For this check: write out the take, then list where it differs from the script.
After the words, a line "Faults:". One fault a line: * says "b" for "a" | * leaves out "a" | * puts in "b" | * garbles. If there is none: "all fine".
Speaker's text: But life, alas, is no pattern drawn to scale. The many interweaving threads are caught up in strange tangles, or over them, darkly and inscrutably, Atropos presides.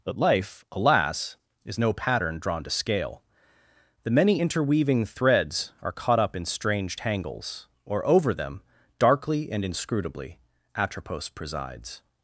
But life, alas, is no pattern drawn to scale. The many interweaving threads are caught up in strange tangles, or over them, darkly and inscrutably, Atropos presides.
Faults:
all fine